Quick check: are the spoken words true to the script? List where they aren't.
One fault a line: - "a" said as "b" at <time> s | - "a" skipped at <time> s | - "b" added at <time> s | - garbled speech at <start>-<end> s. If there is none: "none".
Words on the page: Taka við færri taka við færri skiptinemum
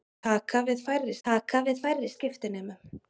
none